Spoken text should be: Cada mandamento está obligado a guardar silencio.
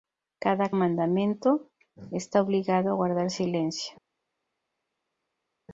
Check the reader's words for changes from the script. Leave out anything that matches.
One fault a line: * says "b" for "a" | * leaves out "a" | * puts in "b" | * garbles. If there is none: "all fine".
all fine